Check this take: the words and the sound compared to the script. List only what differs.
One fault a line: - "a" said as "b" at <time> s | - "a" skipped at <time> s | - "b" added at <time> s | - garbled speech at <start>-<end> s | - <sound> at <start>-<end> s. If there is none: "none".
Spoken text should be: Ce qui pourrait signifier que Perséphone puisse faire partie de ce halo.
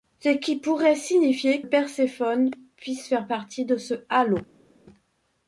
- "que" skipped at 1.6 s